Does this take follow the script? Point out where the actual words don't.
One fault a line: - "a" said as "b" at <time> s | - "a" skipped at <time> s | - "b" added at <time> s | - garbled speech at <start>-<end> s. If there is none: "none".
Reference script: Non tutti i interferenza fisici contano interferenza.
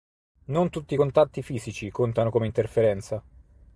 - "interferenza" said as "contatti" at 0.9 s
- "come" added at 2.3 s